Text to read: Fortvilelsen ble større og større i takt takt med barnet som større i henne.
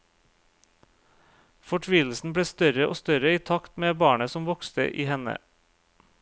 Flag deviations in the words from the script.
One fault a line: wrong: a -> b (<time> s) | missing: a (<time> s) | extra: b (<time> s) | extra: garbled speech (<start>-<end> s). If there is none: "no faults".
missing: takt (3.7 s)
wrong: større -> vokste (4.5 s)